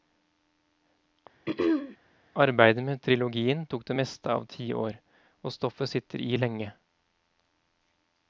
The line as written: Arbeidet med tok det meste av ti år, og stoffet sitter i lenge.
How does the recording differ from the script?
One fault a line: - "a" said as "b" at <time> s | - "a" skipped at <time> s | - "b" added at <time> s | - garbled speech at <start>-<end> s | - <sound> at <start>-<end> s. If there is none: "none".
- throat clearing at 1.5-2.0 s
- "trilogien" added at 3.0 s